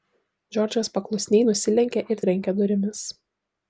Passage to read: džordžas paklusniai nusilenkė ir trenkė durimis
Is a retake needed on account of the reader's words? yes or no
no